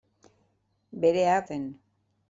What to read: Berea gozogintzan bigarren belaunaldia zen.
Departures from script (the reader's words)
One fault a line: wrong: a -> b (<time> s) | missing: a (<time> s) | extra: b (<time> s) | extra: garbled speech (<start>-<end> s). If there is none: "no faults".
missing: gozogintzan bigarren belaunaldia (1.4 s)